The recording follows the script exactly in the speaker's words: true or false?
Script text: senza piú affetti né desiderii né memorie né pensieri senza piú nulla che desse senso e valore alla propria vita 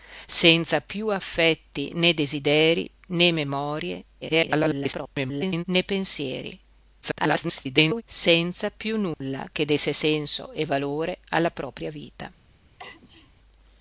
false